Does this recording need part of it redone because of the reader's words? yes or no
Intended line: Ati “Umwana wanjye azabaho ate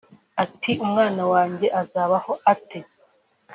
no